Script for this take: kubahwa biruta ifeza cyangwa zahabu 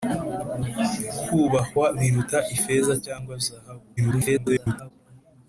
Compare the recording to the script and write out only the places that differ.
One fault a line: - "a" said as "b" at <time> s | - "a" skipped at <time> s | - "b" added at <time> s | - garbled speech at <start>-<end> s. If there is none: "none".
- garbled speech at 4.0-4.9 s